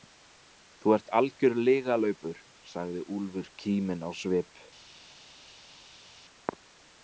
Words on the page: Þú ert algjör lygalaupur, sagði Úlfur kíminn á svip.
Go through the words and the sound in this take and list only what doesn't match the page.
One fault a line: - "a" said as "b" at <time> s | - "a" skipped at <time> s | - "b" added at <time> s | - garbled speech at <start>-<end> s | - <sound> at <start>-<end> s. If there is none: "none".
none